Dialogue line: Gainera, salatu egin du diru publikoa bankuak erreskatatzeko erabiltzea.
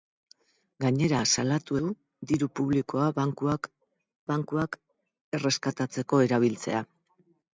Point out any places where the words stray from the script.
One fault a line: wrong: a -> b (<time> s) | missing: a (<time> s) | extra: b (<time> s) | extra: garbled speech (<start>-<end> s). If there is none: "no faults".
missing: egin (1.8 s)
extra: bankuak (4.3 s)